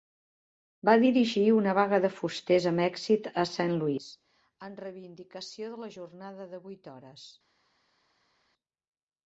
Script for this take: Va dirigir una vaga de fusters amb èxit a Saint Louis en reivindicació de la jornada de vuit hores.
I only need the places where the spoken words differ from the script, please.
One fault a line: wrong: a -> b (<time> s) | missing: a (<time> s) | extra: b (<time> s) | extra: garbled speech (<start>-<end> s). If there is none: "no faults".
no faults